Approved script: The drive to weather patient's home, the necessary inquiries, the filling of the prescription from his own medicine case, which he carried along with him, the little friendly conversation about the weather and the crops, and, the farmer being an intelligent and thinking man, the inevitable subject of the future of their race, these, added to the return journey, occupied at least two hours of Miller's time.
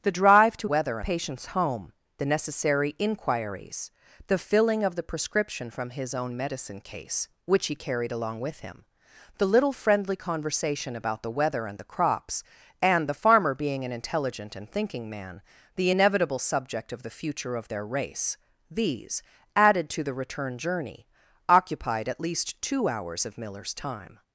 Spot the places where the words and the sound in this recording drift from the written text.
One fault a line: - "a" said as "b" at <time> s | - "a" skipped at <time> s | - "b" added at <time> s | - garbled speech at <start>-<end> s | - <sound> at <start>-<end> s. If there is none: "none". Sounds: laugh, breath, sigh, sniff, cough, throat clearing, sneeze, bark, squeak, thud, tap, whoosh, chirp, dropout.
none